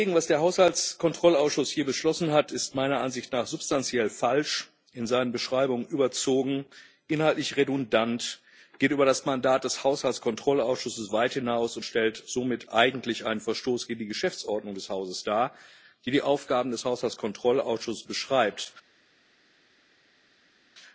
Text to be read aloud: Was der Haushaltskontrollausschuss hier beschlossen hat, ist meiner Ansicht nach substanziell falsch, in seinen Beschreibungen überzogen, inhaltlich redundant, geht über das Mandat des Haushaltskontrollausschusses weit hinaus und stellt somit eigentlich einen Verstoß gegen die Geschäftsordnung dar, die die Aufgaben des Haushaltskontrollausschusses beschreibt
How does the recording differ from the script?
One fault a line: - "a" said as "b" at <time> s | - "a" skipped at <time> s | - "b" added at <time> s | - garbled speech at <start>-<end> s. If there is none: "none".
- "des Hauses" added at 14.7 s